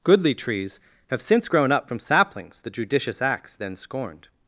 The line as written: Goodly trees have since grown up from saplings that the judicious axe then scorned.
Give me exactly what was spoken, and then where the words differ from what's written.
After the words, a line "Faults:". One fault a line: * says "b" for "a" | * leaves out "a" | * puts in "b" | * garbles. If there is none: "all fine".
Goodly trees have since grown up from saplings the judicious axe then scorned.
Faults:
* leaves out "that"